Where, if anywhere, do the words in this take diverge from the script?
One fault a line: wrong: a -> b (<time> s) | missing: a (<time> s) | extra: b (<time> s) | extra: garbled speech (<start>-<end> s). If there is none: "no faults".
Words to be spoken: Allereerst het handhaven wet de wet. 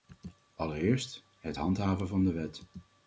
wrong: wet -> van (2.1 s)